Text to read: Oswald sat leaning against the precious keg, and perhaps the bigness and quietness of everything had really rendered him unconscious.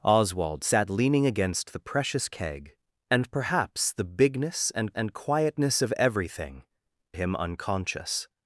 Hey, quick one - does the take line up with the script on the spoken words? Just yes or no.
no